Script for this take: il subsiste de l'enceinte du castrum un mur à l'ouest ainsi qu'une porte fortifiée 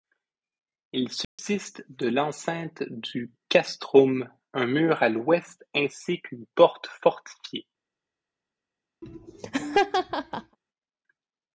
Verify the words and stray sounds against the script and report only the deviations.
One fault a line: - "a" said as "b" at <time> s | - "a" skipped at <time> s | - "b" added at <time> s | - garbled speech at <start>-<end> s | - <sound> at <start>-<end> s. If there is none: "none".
- dropout at 1.2-1.4 s
- laugh at 9.0-10.6 s